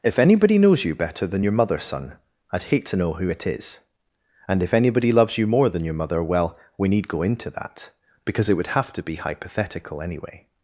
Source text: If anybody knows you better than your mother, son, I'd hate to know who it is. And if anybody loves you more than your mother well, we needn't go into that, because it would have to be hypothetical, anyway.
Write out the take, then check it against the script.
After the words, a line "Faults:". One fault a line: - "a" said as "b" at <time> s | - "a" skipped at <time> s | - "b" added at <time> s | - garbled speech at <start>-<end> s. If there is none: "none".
If anybody knows you better than your mother, son, I'd hate to know who it is. And if anybody loves you more than your mother well, we need go into that, because it would have to be hypothetical, anyway.
Faults:
- "needn't" said as "need" at 6.9 s